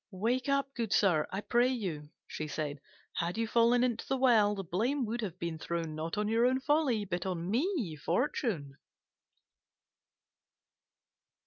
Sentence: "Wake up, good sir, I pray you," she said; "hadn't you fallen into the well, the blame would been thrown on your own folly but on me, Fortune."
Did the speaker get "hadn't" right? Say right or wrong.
wrong